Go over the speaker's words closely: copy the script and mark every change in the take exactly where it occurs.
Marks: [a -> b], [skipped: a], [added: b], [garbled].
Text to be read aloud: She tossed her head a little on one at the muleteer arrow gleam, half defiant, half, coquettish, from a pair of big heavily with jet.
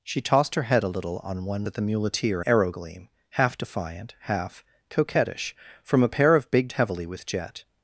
She tossed her head a little on one at the muleteer arrow gleam, half defiant, half, coquettish, from a pair of big heavily with jet.